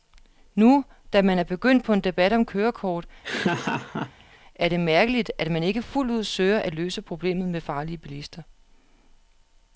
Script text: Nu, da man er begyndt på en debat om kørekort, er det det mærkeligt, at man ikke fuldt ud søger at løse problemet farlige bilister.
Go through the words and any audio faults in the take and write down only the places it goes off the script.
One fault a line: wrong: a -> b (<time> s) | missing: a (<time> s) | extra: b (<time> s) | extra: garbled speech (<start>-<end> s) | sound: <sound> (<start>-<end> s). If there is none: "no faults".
sound: laugh (3.2-4.4 s)
missing: det (4.8 s)
extra: med (7.5 s)